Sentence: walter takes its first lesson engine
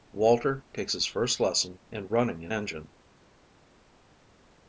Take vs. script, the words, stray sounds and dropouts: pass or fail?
fail